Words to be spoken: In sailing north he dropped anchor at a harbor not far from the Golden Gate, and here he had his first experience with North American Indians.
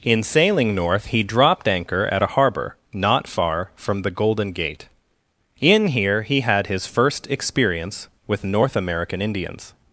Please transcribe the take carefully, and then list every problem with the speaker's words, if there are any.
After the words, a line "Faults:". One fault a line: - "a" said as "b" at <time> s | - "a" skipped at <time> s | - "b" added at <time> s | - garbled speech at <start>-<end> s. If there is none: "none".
In sailing north he dropped anchor at a harbor not far from the Golden Gate, in here he had his first experience with North American Indians.
Faults:
- "and" said as "in" at 5.6 s